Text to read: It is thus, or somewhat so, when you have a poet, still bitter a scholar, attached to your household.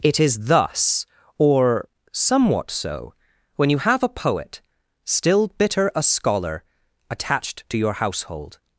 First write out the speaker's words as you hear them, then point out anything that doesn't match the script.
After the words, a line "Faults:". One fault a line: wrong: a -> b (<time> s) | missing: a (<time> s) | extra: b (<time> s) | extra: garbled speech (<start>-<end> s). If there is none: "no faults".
It is thus, or somewhat so, when you have a poet, still bitter a scholar, attached to your household.
Faults:
no faults